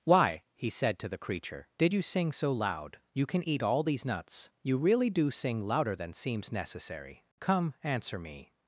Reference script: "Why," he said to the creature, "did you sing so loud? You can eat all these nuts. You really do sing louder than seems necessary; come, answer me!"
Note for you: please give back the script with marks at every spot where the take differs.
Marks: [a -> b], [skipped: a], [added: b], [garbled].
"Why," he said to the creature, "did you sing so loud? You can eat all these nuts. You really do sing louder than seems necessary; come, answer me!"